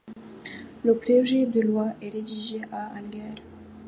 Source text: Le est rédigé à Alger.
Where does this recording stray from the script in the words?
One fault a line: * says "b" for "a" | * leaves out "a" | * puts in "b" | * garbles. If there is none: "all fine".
* puts in "projet de loi"